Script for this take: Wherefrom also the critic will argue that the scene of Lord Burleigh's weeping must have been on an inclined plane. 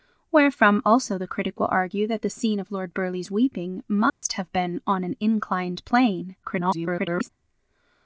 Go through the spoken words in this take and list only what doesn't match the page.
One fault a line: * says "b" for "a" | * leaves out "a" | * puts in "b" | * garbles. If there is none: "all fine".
* garbles